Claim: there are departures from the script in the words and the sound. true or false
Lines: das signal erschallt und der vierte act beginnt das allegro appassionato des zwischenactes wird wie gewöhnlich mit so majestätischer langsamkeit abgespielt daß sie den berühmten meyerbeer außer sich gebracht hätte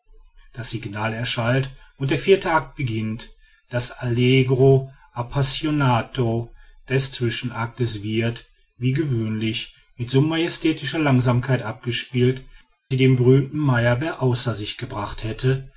true